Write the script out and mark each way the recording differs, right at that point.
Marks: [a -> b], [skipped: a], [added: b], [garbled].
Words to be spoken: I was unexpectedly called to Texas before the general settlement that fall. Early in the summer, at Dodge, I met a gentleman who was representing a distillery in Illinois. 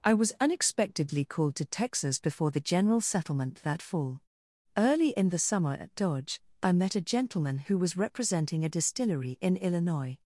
I was unexpectedly called to Texas before the general settlement that fall. Early in the summer, at Dodge, I met a gentleman who was representing a distillery in Illinois.